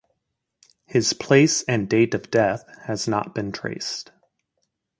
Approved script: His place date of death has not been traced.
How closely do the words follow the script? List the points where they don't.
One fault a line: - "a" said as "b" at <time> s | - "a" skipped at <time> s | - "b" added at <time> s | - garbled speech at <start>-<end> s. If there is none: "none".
- "and" added at 1.7 s